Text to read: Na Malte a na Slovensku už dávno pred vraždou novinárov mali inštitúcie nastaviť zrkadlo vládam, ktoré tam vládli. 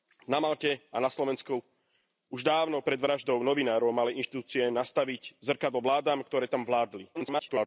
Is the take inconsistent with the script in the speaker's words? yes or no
yes